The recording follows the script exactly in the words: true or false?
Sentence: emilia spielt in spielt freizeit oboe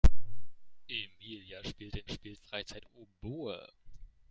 true